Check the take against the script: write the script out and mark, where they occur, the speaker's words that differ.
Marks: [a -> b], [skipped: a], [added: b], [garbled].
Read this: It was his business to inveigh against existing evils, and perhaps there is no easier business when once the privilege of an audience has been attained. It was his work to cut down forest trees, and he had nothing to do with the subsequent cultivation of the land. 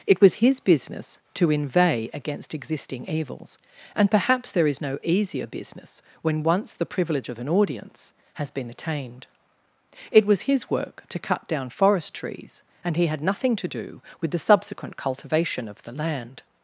It was his business to inveigh against existing evils, and perhaps there is no easier business when once the privilege of an audience has been attained. It was his work to cut down forest trees, and he had nothing to do with the subsequent cultivation of the land.